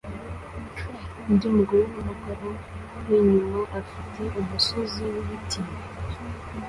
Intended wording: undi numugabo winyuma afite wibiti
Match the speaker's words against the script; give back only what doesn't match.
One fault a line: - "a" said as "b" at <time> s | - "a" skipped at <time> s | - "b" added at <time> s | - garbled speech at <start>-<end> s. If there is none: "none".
- "mugore" added at 1.6 s
- "umusozi" added at 4.4 s